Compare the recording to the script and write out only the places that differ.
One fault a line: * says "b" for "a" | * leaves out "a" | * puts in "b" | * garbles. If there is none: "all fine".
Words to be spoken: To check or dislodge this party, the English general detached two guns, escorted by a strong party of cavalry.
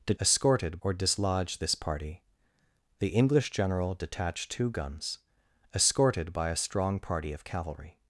* says "escorted" for "check"